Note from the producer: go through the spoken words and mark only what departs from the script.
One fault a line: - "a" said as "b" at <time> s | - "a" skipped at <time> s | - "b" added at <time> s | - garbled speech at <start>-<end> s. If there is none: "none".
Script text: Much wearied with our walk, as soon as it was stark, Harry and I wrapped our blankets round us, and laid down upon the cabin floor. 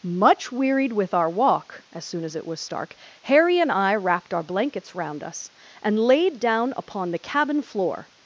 none